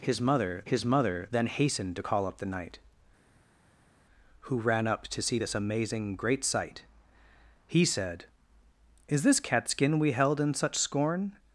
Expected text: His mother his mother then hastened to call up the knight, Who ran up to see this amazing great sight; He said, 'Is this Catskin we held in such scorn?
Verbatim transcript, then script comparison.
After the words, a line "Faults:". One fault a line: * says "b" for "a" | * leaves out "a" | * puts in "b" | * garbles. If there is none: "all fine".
His mother his mother then hastened to call up the knight, Who ran up to see this amazing great sight; He said, 'Is this Catskin we held in such scorn?
Faults:
all fine